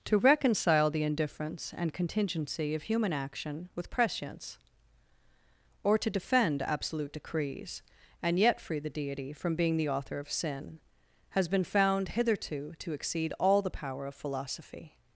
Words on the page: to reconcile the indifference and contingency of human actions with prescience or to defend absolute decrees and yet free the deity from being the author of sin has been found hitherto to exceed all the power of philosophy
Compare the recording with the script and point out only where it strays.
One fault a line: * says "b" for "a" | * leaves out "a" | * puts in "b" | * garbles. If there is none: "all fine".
* says "action" for "actions"